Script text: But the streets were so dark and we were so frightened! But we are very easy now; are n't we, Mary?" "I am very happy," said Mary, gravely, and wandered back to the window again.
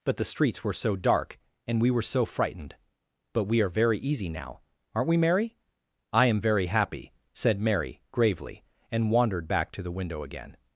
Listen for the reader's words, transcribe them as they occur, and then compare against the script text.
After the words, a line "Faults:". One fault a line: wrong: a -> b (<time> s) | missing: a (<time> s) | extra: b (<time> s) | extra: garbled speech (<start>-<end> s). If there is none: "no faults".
But the streets were so dark and we were so frightened! But we are very easy now; are n't we, Mary?" "I am very happy," said Mary, gravely, and wandered back to the window again.
Faults:
no faults